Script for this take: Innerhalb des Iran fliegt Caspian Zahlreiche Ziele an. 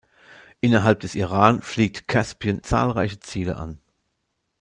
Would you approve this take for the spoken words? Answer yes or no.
yes